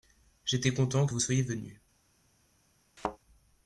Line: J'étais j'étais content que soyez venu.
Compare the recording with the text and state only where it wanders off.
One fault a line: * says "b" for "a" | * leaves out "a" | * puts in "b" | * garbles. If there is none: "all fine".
* leaves out "j'étais"
* puts in "vous"